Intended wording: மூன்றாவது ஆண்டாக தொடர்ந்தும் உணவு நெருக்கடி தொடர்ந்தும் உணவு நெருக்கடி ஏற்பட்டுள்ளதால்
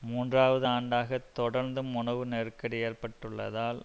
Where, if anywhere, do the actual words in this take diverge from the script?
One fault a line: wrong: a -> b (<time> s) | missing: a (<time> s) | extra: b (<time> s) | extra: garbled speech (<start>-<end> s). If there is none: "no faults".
missing: தொடர்ந்தும் உணவு நெருக்கடி (2.8 s)